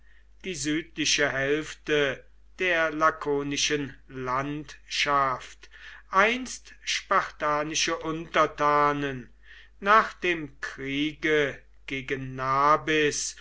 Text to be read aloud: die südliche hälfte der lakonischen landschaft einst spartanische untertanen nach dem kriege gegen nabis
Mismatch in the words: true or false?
false